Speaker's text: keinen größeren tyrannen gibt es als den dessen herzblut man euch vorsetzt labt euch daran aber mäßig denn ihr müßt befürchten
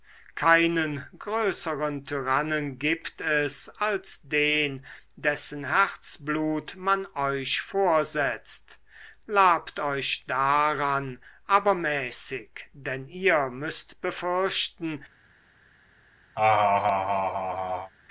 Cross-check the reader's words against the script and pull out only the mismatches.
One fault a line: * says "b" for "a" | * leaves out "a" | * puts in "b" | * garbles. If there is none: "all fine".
all fine